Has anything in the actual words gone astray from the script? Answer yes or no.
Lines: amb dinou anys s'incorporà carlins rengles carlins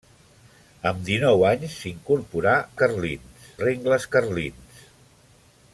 no